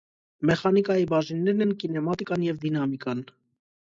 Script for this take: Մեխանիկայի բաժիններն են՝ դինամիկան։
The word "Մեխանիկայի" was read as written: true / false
true